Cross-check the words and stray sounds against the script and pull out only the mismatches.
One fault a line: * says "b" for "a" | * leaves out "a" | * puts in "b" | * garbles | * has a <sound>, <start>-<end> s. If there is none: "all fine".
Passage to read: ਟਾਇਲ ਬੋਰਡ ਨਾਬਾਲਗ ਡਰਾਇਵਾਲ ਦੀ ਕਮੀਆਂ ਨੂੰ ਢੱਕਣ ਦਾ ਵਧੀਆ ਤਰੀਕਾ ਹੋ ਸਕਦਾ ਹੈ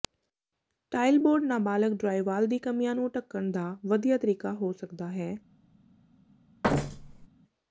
* has a thud, 6.6-7.3 s